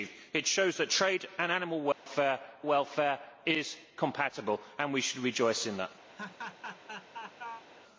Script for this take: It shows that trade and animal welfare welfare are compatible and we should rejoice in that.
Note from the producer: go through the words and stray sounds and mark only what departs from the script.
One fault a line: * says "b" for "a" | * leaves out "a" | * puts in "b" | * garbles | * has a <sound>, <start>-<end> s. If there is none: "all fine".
* has a dropout, 1.9-2.1 s
* has a laugh, 6.1-7.6 s